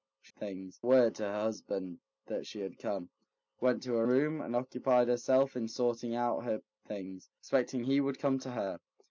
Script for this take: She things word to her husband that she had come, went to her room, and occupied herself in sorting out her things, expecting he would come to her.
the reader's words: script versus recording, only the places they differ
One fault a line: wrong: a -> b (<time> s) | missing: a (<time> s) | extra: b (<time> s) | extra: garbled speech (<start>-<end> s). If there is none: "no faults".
no faults